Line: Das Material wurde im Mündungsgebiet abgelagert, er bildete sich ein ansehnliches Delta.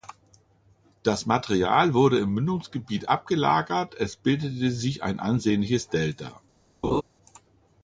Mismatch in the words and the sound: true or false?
true